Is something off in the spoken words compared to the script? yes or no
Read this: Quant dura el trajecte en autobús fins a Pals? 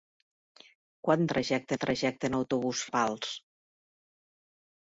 yes